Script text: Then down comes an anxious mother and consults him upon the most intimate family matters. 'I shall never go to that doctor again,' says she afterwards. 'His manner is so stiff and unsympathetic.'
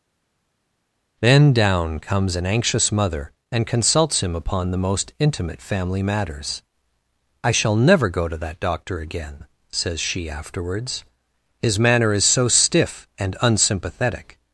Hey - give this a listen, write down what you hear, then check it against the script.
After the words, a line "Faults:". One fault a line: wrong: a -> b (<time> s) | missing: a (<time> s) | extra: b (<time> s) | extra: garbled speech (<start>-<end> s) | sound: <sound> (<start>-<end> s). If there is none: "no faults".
Then down comes an anxious mother and consults him upon the most intimate family matters. 'I shall never go to that doctor again,' says she afterwards. 'His manner is so stiff and unsympathetic.'
Faults:
no faults